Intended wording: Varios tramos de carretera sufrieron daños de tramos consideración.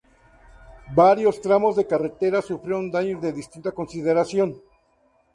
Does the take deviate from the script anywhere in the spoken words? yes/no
yes